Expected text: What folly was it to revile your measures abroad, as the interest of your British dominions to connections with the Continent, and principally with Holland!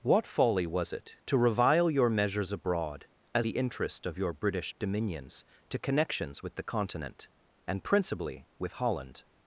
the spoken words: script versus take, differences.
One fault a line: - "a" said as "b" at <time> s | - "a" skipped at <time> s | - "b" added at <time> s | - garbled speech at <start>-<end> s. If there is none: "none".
none